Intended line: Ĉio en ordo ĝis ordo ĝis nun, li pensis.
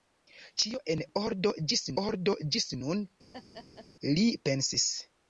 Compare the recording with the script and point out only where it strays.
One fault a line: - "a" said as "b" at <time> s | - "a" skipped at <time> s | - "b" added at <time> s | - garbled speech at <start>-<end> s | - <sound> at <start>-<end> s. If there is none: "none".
- laugh at 3.3-3.9 s